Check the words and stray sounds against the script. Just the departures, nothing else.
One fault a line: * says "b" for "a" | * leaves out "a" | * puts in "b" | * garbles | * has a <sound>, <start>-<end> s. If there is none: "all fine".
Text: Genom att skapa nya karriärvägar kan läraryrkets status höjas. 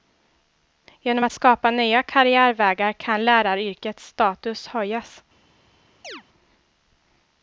* has a chirp, 6.0-6.2 s